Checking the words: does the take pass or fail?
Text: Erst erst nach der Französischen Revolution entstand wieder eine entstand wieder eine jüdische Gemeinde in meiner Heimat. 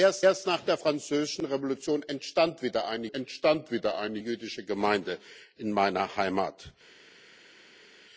pass